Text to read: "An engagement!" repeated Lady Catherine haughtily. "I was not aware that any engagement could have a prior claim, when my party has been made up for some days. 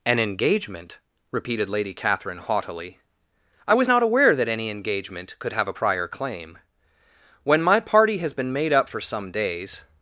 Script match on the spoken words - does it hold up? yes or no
yes